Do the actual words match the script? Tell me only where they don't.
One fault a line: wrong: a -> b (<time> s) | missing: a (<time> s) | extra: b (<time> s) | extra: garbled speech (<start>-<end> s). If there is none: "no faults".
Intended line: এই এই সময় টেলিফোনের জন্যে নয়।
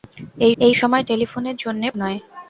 no faults